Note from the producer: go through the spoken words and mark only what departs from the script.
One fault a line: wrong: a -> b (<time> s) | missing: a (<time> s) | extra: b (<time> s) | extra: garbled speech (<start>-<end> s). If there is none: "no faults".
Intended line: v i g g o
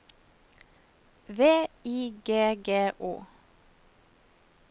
no faults